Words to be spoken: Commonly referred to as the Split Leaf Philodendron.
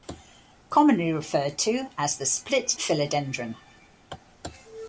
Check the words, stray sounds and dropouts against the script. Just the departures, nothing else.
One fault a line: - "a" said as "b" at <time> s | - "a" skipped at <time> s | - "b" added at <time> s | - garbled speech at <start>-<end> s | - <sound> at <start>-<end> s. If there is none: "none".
- "Leaf" skipped at 2.8 s